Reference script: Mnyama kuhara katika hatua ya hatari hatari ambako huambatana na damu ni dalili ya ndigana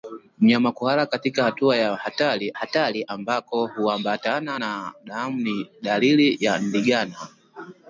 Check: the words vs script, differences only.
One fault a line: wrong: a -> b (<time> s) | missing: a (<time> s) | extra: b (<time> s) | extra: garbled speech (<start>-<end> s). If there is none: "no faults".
no faults